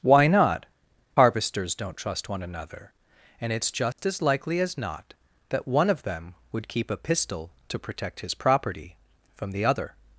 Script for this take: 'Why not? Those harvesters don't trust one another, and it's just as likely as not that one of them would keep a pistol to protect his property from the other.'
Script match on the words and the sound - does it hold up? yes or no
no